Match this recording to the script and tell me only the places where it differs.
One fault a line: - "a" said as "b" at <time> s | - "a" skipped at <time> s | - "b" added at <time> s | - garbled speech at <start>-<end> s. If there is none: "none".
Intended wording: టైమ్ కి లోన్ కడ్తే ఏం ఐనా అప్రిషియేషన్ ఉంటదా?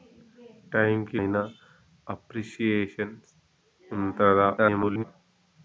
- "లోన్ కడ్తే ఏం" skipped at 1.2 s
- garbled speech at 4.6-5.0 s